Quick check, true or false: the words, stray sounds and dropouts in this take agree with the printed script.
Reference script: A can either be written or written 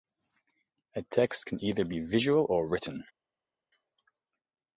false